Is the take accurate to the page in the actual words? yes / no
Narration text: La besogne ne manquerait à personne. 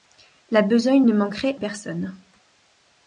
no